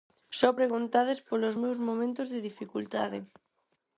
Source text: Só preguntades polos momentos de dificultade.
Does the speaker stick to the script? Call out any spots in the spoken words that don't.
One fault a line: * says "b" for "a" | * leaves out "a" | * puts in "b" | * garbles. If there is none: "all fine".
* puts in "meus"